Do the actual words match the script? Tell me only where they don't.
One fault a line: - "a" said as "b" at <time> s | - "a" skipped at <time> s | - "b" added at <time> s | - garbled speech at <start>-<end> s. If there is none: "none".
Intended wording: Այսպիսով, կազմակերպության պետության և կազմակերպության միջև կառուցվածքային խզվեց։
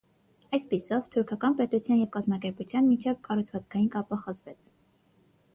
- "կազմակերպության" said as "թուրքական" at 1.1 s
- "կապը" added at 4.0 s